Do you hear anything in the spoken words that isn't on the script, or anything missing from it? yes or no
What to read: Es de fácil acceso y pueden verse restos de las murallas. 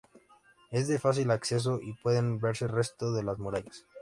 no